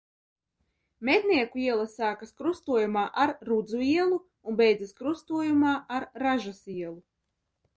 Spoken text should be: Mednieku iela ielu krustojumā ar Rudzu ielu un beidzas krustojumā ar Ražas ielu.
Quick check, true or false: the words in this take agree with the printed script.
false